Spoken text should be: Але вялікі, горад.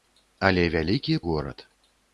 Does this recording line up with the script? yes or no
yes